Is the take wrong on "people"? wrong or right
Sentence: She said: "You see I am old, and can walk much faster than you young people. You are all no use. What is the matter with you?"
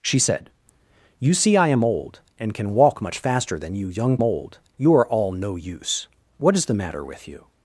wrong